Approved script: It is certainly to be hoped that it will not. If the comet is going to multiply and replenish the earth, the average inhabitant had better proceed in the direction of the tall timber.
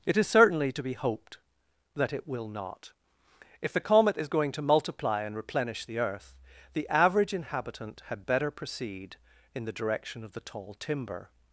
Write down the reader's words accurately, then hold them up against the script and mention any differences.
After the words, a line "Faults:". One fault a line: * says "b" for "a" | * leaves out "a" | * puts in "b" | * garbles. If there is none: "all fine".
It is certainly to be hoped that it will not. If the comet is going to multiply and replenish the earth, the average inhabitant had better proceed in the direction of the tall timber.
Faults:
all fine